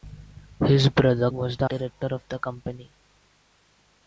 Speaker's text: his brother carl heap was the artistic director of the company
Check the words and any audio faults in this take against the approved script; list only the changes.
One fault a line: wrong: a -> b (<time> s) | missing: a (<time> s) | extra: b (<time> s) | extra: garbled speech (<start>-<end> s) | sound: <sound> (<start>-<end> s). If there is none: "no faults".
missing: carl heap (1.3 s)
missing: artistic (1.7 s)